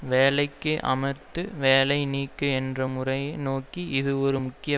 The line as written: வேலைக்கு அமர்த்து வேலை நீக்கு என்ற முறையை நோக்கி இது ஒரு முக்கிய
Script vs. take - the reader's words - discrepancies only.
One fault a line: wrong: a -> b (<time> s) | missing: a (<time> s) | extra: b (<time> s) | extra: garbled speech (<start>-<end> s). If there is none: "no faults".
no faults